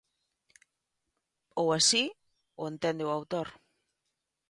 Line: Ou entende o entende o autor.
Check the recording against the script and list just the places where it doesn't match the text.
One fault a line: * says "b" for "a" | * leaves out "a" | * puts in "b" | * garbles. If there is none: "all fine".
* says "así" for "entende"